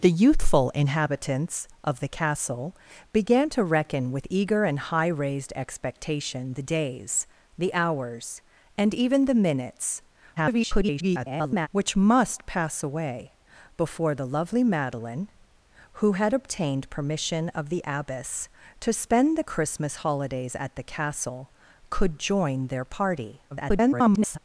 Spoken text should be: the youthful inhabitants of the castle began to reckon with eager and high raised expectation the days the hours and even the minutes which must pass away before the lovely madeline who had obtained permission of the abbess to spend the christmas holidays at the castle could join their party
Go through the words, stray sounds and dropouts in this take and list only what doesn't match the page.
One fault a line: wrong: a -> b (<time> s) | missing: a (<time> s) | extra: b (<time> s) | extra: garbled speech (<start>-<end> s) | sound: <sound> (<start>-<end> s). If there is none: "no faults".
extra: garbled speech (10.4-11.7 s)
extra: garbled speech (23.5-24.4 s)